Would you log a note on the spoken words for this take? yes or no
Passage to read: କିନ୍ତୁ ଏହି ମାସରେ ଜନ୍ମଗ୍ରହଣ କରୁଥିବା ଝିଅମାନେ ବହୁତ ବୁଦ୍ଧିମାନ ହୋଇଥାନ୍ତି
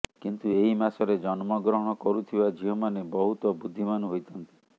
no